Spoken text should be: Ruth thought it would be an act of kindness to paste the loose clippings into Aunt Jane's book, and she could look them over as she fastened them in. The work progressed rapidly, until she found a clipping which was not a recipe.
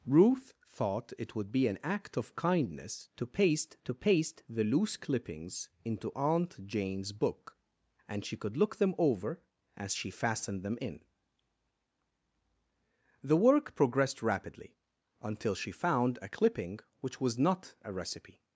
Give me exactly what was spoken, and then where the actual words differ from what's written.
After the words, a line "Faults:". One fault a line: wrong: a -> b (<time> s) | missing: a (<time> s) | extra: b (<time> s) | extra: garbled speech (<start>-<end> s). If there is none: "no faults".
Ruth thought it would be an act of kindness to paste to paste the loose clippings into Aunt Jane's book, and she could look them over as she fastened them in. The work progressed rapidly, until she found a clipping which was not a recipe.
Faults:
extra: to paste (3.8 s)